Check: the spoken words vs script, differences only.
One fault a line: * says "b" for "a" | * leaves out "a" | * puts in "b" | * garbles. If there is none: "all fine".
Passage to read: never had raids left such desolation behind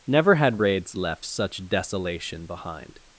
all fine